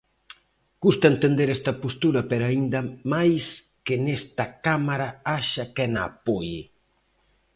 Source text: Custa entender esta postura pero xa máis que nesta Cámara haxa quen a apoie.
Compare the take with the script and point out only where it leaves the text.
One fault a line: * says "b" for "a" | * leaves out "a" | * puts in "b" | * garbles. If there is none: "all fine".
* says "aínda" for "xa"